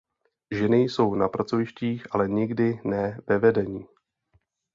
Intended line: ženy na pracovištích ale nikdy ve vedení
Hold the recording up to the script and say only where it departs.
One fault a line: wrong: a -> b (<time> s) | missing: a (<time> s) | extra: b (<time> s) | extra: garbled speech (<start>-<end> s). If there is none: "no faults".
extra: jsou (0.8 s)
extra: ne (2.8 s)